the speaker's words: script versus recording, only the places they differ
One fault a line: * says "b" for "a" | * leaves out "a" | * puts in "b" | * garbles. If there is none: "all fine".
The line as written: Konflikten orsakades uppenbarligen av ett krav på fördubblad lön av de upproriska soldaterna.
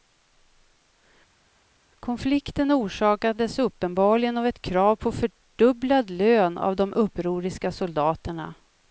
all fine